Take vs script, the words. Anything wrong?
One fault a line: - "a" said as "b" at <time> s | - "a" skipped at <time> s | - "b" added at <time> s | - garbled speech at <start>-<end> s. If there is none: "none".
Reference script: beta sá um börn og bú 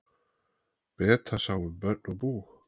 none